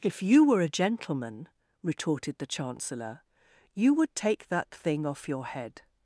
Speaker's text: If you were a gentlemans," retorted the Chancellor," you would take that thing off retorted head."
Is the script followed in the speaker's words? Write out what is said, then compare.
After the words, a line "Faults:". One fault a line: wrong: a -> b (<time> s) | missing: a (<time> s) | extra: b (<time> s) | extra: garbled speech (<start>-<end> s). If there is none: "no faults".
If you were a gentleman," retorted the Chancellor," you would take that thing off your head."
Faults:
wrong: gentlemans -> gentleman (0.7 s)
wrong: retorted -> your (5.3 s)